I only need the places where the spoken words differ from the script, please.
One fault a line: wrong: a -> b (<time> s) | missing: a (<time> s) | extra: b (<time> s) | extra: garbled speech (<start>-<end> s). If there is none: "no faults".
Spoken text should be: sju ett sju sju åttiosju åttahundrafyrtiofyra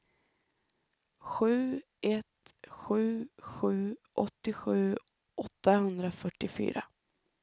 no faults